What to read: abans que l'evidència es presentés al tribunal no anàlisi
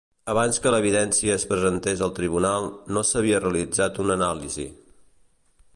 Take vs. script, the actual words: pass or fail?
fail